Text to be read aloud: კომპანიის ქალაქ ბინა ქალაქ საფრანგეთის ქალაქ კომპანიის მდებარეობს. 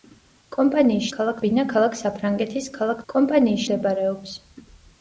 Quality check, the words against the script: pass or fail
pass